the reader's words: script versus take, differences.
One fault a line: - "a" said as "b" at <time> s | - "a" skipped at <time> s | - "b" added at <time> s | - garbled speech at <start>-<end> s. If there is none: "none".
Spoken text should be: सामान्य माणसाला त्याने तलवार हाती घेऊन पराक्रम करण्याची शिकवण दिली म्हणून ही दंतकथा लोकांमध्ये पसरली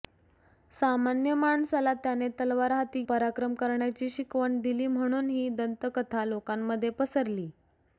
- "घेऊन" skipped at 3.0 s